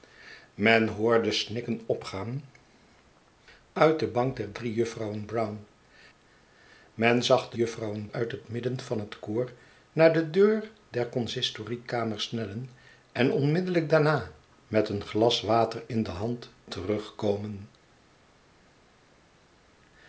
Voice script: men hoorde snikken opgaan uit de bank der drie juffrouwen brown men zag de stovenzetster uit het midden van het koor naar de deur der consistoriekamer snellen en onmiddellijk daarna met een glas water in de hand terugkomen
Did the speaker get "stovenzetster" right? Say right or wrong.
wrong